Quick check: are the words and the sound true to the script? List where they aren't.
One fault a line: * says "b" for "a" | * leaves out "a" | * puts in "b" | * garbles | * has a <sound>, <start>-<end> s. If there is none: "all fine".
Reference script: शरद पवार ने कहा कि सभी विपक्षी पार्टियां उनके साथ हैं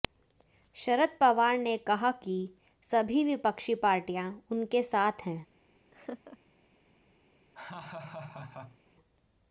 * has a laugh, 5.9-6.4 s
* has a laugh, 7.5-8.8 s